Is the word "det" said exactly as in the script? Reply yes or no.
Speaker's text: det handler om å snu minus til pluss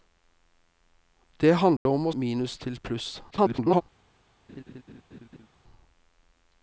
yes